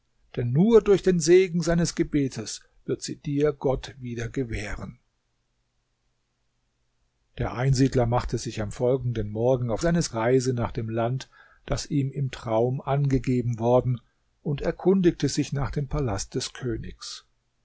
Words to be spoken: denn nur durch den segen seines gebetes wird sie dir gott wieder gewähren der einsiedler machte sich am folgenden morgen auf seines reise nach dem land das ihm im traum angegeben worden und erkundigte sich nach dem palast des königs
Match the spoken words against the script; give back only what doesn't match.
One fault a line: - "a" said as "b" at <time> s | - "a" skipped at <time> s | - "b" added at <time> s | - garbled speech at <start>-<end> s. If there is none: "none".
none